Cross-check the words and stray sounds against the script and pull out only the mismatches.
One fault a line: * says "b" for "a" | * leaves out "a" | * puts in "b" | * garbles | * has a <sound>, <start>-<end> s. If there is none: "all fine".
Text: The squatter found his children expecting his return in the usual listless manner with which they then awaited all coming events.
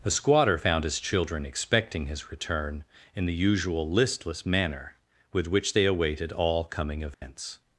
* leaves out "then"
* has a dropout, 7.1-7.2 s